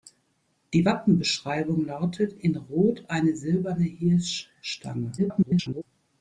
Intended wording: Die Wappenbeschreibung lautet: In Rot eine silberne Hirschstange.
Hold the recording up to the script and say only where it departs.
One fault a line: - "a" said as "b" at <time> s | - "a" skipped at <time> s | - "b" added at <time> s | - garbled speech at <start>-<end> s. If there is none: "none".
- garbled speech at 5.2-5.8 s